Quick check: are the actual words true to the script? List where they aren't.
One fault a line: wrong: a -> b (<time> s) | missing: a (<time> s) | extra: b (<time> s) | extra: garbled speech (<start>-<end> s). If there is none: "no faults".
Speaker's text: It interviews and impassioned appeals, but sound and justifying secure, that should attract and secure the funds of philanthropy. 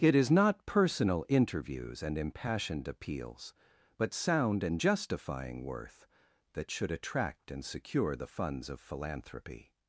extra: is not personal (0.1 s)
wrong: secure -> worth (5.7 s)